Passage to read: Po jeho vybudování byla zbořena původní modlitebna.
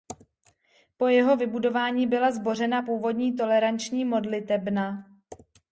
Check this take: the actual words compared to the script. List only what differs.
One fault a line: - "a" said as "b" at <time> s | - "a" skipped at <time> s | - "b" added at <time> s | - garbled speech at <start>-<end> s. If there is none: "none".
- "toleranční" added at 3.4 s